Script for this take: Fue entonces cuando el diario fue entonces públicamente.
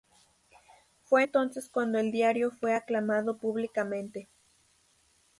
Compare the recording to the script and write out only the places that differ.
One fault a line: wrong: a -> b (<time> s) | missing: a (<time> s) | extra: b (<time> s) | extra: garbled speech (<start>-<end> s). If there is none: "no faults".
wrong: entonces -> aclamado (2.7 s)